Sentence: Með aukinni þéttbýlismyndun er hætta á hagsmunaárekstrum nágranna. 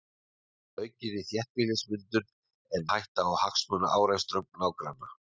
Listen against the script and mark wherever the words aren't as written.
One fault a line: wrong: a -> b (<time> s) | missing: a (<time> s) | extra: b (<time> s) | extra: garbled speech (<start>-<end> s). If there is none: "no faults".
no faults